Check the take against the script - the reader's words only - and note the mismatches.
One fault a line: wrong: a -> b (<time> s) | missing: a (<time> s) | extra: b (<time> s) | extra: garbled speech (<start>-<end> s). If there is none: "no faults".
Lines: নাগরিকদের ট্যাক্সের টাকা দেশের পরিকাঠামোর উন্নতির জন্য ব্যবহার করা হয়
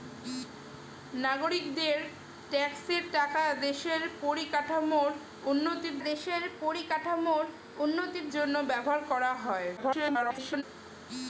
extra: দেশের পরিকাঠামোর উন্নতির (6.0 s)
extra: garbled speech (9.8-10.6 s)